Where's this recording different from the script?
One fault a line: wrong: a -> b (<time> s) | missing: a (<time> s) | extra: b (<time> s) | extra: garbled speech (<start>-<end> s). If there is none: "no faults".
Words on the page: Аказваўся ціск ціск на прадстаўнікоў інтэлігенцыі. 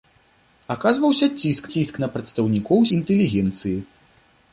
no faults